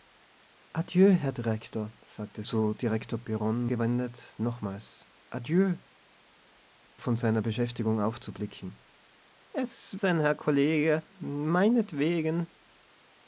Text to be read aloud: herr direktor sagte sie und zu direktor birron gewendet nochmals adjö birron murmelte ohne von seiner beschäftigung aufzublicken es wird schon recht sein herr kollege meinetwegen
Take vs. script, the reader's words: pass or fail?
fail